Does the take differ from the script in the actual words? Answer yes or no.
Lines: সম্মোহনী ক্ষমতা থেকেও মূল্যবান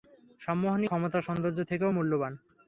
yes